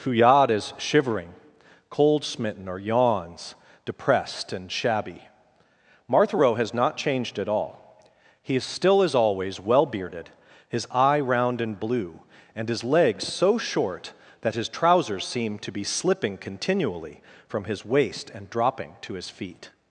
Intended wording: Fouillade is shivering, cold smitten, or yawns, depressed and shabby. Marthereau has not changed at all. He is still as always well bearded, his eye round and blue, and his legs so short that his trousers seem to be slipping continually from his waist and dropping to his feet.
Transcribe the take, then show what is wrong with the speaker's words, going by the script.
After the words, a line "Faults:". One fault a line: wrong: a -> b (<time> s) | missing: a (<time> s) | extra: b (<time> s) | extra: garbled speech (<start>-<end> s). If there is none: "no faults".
Fouillade is shivering, cold smitten, or yawns, depressed and shabby. Marthereau has not changed at all. He is still as always well bearded, his eye round and blue, and his legs so short that his trousers seem to be slipping continually from his waist and dropping to his feet.
Faults:
no faults